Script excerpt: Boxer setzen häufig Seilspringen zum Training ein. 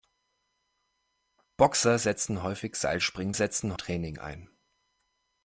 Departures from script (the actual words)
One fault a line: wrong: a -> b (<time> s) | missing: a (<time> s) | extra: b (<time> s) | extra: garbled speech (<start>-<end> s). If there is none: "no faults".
wrong: zum -> setzen (3.3 s)